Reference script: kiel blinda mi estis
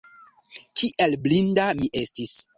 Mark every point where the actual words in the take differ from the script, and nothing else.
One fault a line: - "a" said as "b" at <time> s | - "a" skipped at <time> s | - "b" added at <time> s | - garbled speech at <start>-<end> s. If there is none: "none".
none